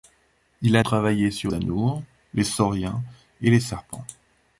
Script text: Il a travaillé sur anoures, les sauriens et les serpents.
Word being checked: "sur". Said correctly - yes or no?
yes